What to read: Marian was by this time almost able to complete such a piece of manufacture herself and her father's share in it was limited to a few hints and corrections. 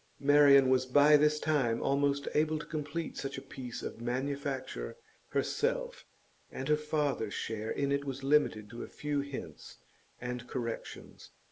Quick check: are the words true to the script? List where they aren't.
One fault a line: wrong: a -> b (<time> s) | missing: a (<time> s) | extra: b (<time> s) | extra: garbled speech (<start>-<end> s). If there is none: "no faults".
no faults